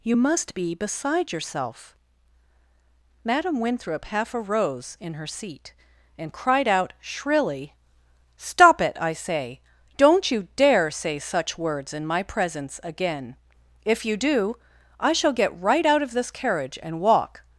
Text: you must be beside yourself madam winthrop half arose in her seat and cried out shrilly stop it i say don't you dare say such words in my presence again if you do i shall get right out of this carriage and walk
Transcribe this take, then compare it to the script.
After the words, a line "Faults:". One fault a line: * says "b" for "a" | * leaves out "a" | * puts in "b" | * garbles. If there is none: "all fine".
you must be beside yourself madam winthrop half arose in her seat and cried out shrilly stop it i say don't you dare say such words in my presence again if you do i shall get right out of this carriage and walk
Faults:
all fine